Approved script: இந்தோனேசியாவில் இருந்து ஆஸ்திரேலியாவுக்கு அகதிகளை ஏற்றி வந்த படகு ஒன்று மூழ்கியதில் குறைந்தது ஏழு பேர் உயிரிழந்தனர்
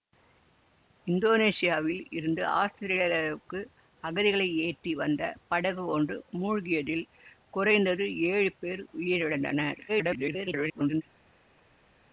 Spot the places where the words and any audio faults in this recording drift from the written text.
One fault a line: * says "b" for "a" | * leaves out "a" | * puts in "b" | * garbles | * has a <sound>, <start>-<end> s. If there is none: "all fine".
* garbles